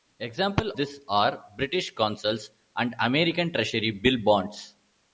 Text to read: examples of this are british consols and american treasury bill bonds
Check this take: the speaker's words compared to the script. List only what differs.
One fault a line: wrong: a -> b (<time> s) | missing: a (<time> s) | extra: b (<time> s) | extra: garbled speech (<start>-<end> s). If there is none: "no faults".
missing: of (0.7 s)